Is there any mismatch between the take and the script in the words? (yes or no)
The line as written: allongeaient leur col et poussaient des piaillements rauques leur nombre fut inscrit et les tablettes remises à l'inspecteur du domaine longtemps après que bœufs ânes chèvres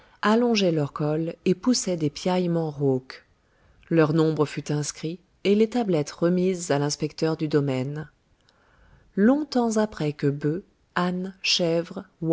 no